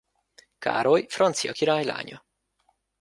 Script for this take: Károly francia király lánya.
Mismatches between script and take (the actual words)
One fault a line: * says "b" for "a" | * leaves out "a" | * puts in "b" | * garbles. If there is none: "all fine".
all fine